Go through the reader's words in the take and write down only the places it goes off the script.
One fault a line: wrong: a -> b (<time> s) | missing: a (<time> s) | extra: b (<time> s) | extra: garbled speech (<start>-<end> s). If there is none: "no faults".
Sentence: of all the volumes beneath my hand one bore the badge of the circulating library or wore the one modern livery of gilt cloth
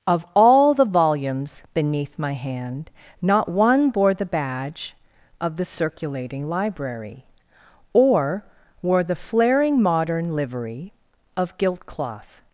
extra: not (3.2 s)
wrong: one -> flaring (9.2 s)